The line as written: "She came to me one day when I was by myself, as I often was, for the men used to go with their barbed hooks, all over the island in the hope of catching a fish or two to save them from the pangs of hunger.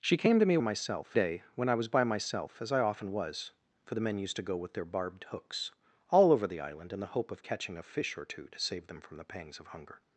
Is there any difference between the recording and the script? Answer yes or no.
yes